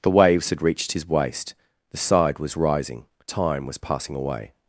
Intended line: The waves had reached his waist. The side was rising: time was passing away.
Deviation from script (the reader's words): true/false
false